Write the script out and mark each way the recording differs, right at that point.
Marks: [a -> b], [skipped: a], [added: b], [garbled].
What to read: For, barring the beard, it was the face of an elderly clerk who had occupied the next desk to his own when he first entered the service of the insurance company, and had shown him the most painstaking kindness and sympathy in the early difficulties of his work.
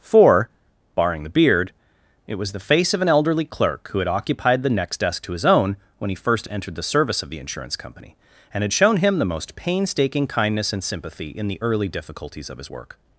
For, barring the beard, it was the face of an elderly clerk who had occupied the next desk to his own when he first entered the service of the insurance company, and had shown him the most painstaking kindness and sympathy in the early difficulties of his work.